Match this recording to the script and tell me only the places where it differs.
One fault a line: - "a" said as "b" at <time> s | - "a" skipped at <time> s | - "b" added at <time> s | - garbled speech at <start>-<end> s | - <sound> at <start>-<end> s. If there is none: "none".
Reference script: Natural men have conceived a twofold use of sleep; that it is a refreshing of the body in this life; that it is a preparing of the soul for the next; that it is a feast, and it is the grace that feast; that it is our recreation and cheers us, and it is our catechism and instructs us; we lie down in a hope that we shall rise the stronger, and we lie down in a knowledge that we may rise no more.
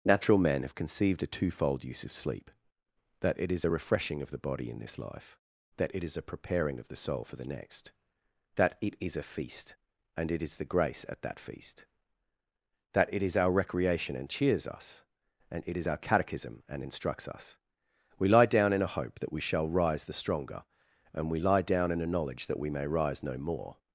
- "at" added at 11.1 s